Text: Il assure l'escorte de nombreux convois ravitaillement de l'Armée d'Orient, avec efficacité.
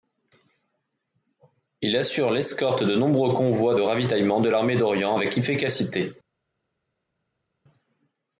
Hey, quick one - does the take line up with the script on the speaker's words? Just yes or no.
yes